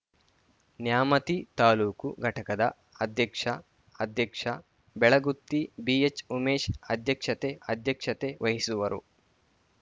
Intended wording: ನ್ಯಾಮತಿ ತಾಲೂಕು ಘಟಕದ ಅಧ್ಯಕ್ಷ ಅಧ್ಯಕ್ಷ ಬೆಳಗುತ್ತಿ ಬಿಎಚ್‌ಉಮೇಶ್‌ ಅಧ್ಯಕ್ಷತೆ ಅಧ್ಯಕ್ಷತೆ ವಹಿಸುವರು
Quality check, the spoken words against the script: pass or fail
pass